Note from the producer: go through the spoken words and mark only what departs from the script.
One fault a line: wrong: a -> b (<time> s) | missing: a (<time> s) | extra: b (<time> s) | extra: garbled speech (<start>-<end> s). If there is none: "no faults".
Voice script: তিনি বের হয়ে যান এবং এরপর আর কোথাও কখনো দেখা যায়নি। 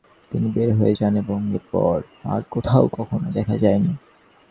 no faults